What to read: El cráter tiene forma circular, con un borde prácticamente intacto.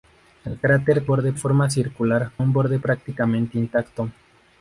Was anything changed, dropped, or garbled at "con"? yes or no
yes